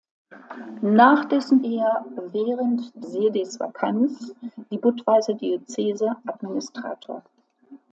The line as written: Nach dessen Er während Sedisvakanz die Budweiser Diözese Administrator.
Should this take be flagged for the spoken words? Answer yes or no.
no